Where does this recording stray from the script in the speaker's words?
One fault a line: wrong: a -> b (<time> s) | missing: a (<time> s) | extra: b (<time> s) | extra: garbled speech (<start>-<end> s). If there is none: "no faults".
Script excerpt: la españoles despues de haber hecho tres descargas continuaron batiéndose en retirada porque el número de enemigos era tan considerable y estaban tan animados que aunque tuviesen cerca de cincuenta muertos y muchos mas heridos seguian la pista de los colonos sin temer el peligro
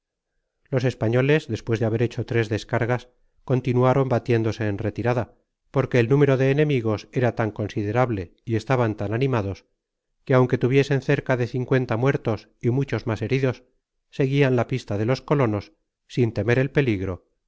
wrong: la -> los (0.7 s)